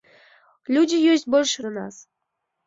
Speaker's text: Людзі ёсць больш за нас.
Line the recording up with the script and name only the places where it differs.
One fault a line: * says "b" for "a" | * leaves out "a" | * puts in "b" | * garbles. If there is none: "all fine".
all fine